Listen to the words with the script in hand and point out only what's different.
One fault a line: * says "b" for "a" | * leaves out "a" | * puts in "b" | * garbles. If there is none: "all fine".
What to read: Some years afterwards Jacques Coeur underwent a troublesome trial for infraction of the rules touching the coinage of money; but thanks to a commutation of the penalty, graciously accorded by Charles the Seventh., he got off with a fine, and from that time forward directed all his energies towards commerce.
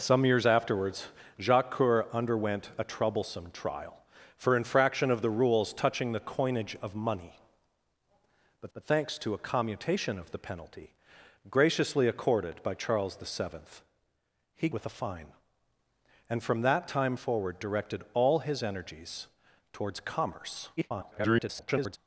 * puts in "but"
* leaves out "got off"
* garbles